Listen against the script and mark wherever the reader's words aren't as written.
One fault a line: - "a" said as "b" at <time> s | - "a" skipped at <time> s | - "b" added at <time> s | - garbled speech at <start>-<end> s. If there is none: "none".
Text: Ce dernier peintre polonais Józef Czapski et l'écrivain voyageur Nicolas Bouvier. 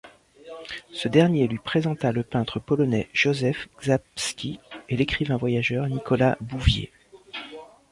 - "lui présenta le" added at 1.5 s